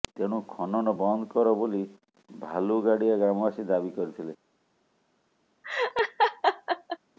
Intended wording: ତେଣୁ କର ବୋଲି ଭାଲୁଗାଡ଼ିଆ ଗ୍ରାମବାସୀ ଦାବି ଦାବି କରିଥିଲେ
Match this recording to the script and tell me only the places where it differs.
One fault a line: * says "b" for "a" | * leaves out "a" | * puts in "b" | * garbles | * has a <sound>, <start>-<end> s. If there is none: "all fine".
* puts in "ଖନନ ବନ୍ଦ"
* leaves out "ଦାବି"
* has a laugh, 5.6-7.0 s